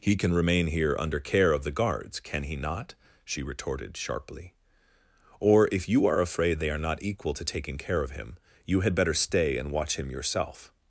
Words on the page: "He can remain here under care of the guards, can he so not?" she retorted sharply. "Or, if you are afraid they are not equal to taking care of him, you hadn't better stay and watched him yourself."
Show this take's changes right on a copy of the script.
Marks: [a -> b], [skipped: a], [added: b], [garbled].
"He can remain here under care of the guards, can he [skipped: so] not?" she retorted sharply. "Or, if you are afraid they are not equal to taking care of him, you [hadn't -> had] better stay and [watched -> watch] him yourself."